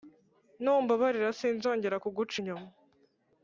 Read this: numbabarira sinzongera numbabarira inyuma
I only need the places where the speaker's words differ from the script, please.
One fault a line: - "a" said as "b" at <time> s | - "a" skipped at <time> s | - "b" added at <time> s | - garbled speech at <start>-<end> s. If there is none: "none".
- "numbabarira" said as "kuguca" at 2.0 s